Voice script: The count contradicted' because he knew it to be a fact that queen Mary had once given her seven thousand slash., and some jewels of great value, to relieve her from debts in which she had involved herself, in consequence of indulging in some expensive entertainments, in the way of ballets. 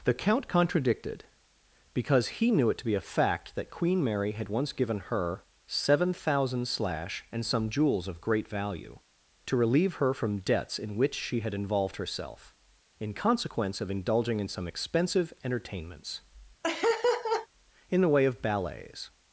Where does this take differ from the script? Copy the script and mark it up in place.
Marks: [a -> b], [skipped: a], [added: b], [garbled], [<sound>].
The count contradicted' because he knew it to be a fact that queen Mary had once given her seven thousand slash., and some jewels of great value, to relieve her from debts in which she had involved herself, in consequence of indulging in some expensive entertainments, [laugh] in the way of ballets.